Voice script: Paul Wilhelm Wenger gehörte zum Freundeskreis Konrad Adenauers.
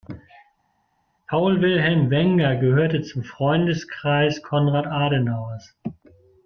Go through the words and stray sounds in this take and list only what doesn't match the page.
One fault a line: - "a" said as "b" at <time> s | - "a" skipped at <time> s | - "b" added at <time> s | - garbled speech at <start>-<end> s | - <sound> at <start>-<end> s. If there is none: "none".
none